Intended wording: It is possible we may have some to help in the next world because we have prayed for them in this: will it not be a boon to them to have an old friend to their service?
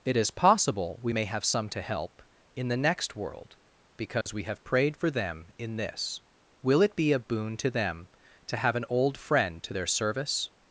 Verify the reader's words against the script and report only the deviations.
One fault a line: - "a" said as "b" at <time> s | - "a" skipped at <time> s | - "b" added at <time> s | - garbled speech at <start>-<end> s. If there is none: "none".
- "not" skipped at 6.9 s